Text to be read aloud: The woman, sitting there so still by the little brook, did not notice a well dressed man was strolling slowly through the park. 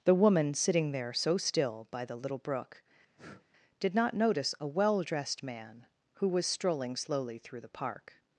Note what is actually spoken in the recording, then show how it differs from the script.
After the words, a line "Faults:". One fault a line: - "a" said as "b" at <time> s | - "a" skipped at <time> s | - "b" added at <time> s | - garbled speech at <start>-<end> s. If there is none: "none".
The woman, sitting there so still by the little brook, did not notice a well dressed man who was strolling slowly through the park.
Faults:
- "who" added at 6.1 s